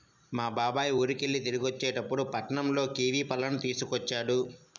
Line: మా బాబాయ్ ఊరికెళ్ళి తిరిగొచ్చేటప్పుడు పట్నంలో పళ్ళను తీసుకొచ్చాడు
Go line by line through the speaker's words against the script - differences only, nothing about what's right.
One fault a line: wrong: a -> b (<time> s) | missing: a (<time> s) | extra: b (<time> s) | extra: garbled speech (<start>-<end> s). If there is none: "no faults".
extra: కివీ (3.0 s)